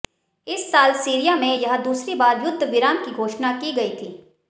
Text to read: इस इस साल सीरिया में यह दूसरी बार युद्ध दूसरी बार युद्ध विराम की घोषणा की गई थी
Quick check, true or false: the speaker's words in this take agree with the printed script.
false